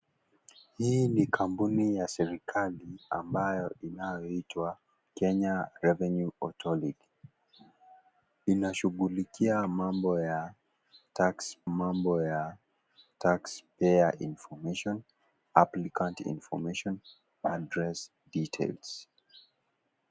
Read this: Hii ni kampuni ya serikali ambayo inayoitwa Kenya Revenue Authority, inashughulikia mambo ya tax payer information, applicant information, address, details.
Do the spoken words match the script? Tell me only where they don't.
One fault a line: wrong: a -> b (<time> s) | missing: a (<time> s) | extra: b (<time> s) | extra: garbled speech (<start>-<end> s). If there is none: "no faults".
extra: mambo ya tax (11.7 s)